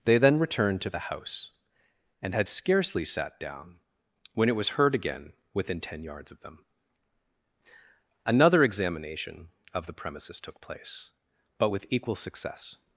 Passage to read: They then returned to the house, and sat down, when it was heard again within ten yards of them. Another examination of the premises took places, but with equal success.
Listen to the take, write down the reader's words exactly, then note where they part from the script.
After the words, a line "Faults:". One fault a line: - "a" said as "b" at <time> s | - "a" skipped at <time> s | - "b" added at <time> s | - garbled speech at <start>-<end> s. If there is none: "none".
They then returned to the house, and had scarcely sat down, when it was heard again within ten yards of them. Another examination of the premises took place, but with equal success.
Faults:
- "had scarcely" added at 2.3 s
- "places" said as "place" at 10.6 s